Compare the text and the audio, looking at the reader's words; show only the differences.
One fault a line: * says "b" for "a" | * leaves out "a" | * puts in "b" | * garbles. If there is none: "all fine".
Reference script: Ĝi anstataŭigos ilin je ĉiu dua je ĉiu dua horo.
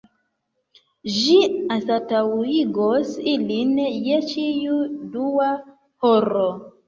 * leaves out "je ĉiu dua"